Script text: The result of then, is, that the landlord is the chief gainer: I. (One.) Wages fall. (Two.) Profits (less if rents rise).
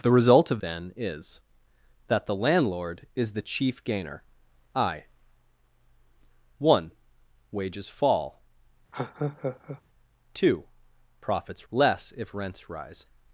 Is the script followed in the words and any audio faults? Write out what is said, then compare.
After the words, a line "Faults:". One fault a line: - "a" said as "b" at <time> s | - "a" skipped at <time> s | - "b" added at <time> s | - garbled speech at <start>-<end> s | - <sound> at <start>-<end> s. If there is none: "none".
The result of then, is, that the landlord is the chief gainer: I. (One.) Wages fall. (Two.) Profits (less if rents rise).
Faults:
- laugh at 8.9-9.8 s